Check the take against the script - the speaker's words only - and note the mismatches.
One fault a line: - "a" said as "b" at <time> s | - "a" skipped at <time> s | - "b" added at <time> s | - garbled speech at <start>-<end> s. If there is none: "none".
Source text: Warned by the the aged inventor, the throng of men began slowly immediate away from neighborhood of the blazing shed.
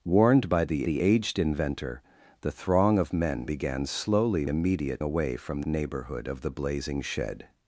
none